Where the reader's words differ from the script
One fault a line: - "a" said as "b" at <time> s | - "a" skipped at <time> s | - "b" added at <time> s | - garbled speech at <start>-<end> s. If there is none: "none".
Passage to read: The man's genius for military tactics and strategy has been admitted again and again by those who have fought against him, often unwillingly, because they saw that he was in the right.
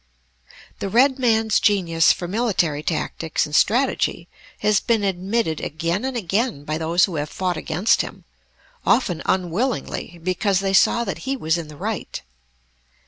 - "red" added at 0.9 s